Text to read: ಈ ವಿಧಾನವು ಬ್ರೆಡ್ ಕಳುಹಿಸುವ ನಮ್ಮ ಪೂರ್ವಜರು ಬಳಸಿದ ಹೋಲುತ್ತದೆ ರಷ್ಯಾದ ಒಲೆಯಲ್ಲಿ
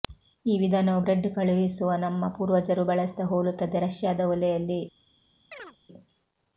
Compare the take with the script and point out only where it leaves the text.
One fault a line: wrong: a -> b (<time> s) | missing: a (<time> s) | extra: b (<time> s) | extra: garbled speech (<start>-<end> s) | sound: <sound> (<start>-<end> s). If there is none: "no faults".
sound: chirp (5.5-5.8 s)